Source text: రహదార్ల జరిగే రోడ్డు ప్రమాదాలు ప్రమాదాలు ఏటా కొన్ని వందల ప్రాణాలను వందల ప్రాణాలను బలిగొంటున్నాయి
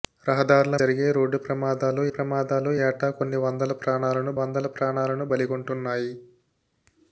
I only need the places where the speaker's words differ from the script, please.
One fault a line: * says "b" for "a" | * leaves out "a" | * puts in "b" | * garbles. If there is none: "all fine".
all fine